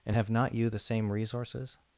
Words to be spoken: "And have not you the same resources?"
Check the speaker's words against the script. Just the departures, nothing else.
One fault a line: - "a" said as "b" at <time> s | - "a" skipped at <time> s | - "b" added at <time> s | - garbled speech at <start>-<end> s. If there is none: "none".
none